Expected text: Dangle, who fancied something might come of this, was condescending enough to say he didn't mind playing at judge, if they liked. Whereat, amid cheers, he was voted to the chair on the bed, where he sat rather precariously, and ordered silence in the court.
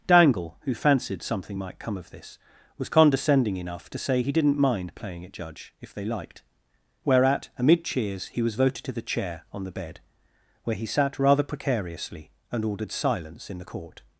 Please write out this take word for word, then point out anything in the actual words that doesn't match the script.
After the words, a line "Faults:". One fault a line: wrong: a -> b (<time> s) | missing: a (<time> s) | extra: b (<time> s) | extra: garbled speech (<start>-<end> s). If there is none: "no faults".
Dangle, who fancied something might come of this, was condescending enough to say he didn't mind playing at judge, if they liked. Whereat, amid cheers, he was voted to the chair on the bed, where he sat rather precariously, and ordered silence in the court.
Faults:
no faults